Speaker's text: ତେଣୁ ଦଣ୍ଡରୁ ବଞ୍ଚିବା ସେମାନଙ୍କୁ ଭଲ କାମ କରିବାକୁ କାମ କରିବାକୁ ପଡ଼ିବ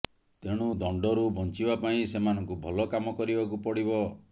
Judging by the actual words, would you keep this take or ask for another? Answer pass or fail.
fail